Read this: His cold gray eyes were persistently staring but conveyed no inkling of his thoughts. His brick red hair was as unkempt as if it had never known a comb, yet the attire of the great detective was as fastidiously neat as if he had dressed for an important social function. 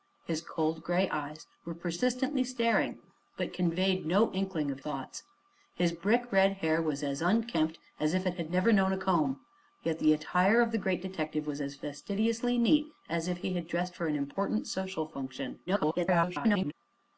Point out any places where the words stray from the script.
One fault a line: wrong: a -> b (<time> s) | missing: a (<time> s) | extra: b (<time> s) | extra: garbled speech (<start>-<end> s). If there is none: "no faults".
missing: his (4.8 s)
extra: garbled speech (15.7-16.7 s)